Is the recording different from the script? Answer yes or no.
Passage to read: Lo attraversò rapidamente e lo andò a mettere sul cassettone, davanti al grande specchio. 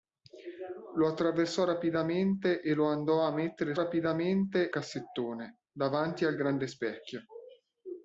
yes